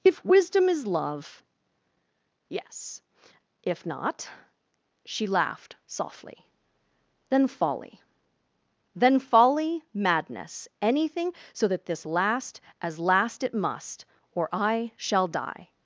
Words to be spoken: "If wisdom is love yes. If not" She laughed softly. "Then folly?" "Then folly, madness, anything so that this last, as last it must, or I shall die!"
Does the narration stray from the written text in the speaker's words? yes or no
no